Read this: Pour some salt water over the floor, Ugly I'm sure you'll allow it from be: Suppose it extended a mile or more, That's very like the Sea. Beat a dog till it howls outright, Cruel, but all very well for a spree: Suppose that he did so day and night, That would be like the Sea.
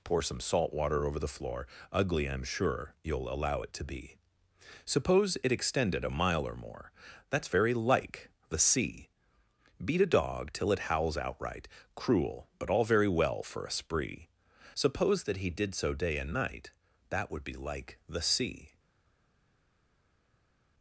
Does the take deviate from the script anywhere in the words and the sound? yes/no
yes